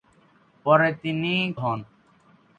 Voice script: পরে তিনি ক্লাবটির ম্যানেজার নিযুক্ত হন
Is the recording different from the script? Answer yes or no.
yes